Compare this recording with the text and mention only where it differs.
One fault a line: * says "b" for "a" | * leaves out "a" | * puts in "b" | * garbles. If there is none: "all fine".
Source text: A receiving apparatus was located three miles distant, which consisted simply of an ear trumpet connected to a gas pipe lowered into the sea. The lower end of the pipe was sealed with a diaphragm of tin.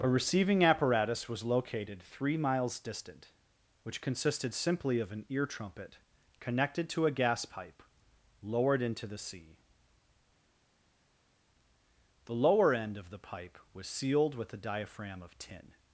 all fine